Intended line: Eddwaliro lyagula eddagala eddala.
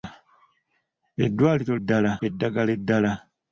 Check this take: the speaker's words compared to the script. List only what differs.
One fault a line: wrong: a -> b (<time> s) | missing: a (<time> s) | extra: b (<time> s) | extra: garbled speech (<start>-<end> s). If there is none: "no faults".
wrong: lyagula -> eddala (1.8 s)